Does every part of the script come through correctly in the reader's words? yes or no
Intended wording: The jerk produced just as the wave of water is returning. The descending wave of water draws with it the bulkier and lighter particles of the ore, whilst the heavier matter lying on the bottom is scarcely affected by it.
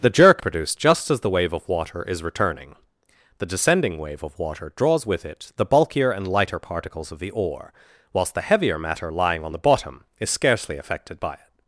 yes